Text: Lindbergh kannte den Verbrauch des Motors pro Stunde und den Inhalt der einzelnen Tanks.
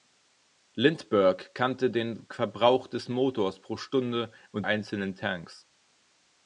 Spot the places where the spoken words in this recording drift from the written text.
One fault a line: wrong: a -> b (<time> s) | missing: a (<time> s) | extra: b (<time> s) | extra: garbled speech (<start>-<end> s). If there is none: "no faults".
missing: den Inhalt der (4.7 s)